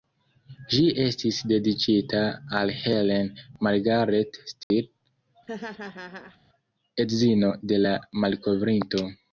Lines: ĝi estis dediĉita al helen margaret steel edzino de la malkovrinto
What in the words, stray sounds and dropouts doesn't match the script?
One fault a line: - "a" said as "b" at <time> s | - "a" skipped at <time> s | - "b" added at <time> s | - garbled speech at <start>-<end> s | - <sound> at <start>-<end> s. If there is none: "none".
- dropout at 4.6-4.7 s
- laugh at 5.5-6.4 s